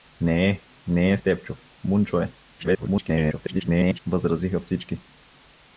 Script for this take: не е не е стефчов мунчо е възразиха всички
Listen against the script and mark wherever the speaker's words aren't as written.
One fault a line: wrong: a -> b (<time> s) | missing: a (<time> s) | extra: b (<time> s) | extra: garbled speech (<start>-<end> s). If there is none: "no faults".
extra: garbled speech (2.6-4.0 s)